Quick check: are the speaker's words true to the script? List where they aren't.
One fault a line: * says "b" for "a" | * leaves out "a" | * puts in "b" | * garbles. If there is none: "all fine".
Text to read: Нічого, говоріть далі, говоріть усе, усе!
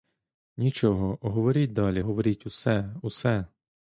all fine